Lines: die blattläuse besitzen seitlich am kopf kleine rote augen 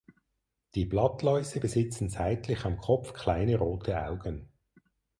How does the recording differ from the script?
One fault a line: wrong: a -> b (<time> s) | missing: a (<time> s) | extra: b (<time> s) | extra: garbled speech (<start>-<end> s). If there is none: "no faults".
no faults